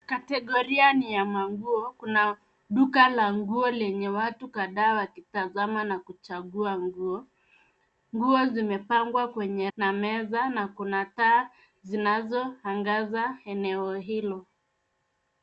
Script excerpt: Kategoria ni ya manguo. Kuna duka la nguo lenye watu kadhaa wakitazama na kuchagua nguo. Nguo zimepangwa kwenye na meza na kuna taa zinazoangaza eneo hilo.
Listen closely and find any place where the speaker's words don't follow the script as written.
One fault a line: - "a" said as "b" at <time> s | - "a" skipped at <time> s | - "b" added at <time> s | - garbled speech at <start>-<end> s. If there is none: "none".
none